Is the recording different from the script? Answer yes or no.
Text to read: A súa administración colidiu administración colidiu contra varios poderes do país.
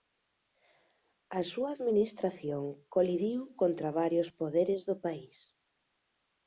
yes